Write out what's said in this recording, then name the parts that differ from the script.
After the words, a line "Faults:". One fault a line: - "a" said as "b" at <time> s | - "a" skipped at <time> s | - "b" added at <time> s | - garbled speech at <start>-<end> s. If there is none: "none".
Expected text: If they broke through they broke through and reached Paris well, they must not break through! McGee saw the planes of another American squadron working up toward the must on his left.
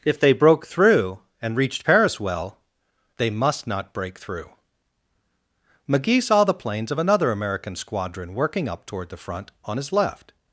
If they broke through and reached Paris well, they must not break through! McGee saw the planes of another American squadron working up toward the front on his left.
Faults:
- "they broke through" skipped at 1.2 s
- "must" said as "front" at 9.2 s